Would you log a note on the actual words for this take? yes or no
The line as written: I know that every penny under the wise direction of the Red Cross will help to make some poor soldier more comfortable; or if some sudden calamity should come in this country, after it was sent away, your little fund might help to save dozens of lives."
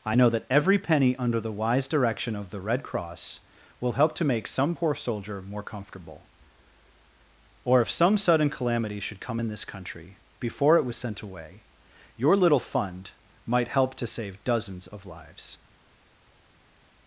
yes